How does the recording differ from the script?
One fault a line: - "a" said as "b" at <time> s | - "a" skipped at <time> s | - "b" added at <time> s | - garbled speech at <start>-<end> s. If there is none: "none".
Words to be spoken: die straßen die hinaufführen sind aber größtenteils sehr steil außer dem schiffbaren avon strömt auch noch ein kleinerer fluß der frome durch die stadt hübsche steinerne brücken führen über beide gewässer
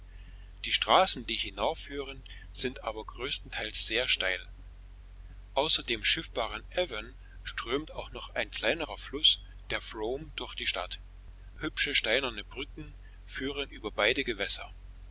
none